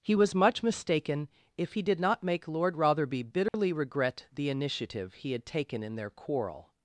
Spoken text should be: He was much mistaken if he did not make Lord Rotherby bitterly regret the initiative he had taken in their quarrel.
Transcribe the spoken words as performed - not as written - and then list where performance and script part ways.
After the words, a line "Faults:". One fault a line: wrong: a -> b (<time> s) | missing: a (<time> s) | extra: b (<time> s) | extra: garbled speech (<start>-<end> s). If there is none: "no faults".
He was much mistaken if he did not make Lord Rotherby bitterly regret the initiative he had taken in their quarrel.
Faults:
no faults